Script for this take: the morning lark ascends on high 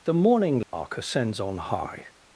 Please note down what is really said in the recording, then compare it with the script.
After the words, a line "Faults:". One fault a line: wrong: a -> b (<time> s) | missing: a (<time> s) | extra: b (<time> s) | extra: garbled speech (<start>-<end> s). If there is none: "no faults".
the morning lark ascends on high
Faults:
no faults